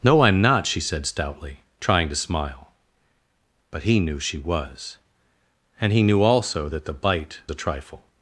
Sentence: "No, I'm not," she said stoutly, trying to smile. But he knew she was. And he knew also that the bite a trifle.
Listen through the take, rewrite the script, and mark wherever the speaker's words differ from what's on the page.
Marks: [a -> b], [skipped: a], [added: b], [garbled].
"No, I'm not," she said stoutly, trying to smile. But he knew she was. And he knew also that the bite a trifle.